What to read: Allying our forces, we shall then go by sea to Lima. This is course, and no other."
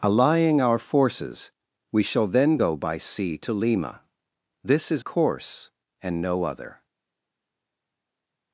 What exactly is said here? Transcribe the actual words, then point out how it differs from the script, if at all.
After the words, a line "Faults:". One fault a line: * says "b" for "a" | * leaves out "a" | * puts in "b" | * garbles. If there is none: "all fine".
Allying our forces, we shall then go by sea to Lima. This is course, and no other."
Faults:
all fine